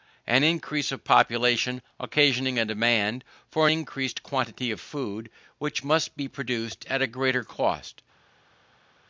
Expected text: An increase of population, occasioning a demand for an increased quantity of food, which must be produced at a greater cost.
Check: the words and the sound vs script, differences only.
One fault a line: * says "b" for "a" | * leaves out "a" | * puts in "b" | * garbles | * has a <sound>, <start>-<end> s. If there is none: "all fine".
all fine